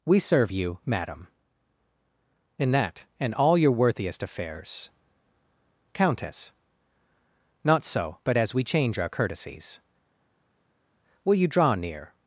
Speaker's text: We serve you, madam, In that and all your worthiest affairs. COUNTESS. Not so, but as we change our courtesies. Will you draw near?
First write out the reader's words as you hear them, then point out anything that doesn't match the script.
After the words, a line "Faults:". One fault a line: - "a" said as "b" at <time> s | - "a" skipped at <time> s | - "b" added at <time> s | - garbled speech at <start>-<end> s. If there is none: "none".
We serve you, madam, In that and all your worthiest affairs. COUNTESS. Not so, but as we change our courtesies. Will you draw near?
Faults:
none